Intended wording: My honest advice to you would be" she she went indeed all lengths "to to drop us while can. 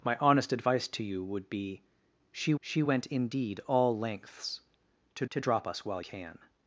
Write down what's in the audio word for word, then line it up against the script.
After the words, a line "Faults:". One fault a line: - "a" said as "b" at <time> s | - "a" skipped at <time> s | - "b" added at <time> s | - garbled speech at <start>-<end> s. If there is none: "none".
My honest advice to you would be" she she went indeed all lengths "to to drop us while can.
Faults:
none